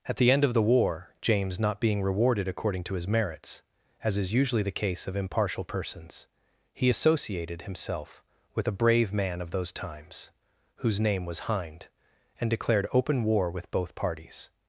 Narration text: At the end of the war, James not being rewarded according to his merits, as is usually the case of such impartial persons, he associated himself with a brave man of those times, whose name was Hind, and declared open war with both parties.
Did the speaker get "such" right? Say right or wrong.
wrong